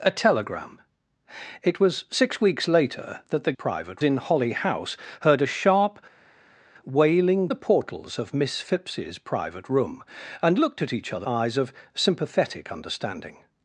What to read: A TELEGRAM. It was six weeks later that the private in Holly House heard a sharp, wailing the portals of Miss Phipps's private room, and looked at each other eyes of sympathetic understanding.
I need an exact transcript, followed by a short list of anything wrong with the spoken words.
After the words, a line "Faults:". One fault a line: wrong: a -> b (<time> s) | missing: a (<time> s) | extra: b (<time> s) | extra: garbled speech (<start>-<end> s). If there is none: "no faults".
A TELEGRAM. It was six weeks later that the private in Holly House heard a sharp, wailing the portals of Miss Phipps's private room, and looked at each other eyes of sympathetic understanding.
Faults:
no faults